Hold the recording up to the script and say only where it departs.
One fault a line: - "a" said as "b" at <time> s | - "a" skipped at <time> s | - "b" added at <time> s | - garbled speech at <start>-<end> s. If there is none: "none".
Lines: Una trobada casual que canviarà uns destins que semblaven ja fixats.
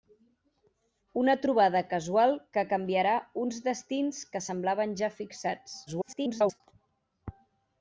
- garbled speech at 5.9-6.6 s